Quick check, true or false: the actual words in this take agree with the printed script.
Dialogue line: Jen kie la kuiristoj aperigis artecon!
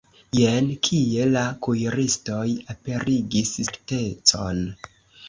true